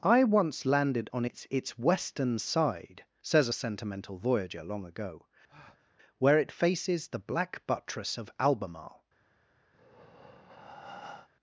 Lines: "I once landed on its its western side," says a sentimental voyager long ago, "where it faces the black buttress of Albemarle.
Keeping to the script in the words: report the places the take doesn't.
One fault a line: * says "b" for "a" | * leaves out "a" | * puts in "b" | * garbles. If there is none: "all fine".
all fine